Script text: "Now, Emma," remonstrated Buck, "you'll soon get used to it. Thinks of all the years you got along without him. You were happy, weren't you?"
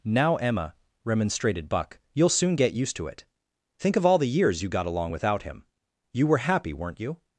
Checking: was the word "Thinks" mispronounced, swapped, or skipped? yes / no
yes